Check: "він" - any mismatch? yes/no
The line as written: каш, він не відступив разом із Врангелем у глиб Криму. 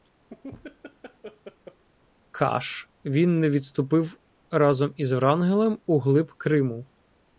no